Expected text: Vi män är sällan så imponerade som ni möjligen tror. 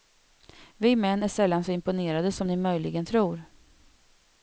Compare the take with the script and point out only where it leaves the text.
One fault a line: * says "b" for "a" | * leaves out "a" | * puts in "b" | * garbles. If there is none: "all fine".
all fine